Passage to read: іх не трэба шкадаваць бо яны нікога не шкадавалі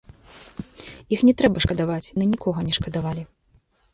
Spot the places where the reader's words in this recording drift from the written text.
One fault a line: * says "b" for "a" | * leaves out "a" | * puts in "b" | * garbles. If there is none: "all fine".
* leaves out "бо"